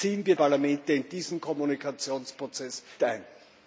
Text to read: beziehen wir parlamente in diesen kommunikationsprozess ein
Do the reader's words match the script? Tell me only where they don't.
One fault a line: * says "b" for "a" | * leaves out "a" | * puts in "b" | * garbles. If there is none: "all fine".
all fine